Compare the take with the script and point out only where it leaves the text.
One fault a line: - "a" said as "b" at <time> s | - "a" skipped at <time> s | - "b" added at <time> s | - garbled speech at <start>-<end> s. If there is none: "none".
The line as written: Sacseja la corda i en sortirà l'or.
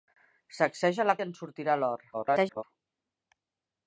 - "corda" skipped at 1.1 s
- garbled speech at 2.1-2.6 s